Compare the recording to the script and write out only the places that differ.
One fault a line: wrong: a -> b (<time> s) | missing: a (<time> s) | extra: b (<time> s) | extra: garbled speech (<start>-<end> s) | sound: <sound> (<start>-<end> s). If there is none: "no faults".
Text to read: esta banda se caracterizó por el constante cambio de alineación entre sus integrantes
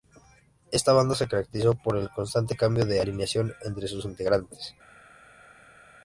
no faults